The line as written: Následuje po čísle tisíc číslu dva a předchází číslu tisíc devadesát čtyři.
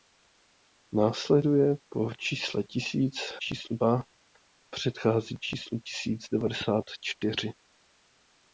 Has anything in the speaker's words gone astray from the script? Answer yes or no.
no